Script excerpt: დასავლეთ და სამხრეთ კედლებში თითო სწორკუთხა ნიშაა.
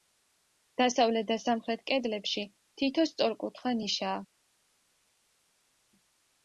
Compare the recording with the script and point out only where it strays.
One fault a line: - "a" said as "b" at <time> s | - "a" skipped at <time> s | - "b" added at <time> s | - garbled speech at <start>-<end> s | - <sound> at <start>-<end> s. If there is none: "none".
none